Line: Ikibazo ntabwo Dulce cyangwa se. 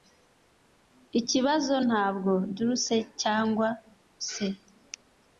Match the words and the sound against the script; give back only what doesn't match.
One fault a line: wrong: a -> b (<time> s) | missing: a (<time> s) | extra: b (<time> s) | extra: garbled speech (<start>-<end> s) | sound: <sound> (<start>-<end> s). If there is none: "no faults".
no faults